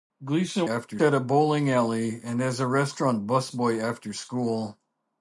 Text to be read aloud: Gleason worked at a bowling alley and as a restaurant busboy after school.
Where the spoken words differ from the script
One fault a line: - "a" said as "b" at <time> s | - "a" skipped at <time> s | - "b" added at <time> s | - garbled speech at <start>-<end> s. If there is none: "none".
- "worked" said as "after" at 0.7 s